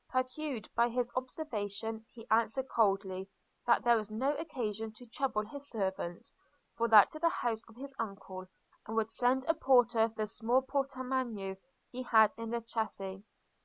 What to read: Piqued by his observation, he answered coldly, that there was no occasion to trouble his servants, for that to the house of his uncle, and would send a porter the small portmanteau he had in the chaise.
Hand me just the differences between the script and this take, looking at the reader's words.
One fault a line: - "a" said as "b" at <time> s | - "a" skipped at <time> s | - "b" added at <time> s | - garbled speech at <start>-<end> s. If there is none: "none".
none